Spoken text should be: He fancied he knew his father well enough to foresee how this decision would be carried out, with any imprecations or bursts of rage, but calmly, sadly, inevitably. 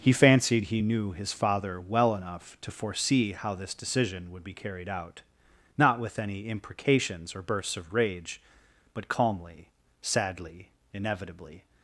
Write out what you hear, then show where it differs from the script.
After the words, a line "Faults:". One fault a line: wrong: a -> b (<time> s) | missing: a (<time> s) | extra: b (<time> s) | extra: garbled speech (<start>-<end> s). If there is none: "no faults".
He fancied he knew his father well enough to foresee how this decision would be carried out, not with any imprecations or bursts of rage, but calmly, sadly, inevitably.
Faults:
extra: not (5.8 s)